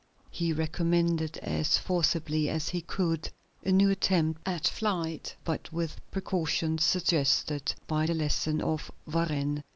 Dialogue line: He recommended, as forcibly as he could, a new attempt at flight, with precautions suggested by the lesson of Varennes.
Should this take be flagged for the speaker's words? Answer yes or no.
yes